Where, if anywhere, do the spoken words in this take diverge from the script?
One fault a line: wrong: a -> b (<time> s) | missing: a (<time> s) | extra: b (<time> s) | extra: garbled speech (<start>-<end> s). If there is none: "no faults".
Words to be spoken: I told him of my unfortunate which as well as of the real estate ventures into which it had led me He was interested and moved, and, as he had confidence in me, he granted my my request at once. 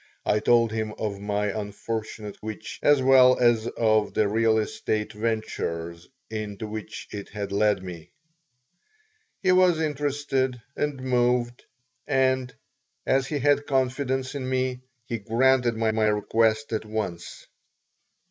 no faults